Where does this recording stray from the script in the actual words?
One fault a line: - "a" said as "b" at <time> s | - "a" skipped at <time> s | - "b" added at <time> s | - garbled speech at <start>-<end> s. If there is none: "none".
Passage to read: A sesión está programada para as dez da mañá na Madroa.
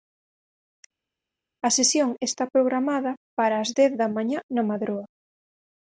none